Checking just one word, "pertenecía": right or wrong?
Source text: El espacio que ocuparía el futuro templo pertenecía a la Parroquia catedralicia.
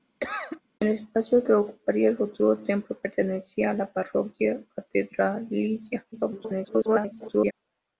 right